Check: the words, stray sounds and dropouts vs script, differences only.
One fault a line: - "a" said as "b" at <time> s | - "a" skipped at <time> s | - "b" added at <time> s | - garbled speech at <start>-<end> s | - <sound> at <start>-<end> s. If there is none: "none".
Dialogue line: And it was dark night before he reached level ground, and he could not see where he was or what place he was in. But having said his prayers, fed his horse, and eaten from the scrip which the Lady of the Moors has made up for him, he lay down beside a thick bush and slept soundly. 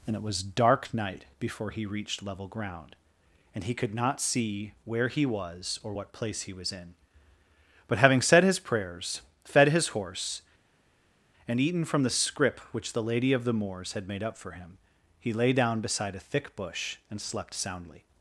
- "has" said as "had" at 13.9 s